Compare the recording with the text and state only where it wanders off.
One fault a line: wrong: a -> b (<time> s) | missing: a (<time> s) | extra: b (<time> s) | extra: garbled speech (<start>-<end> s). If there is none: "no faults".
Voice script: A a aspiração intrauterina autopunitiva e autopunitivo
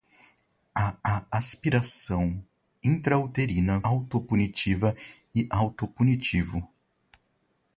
no faults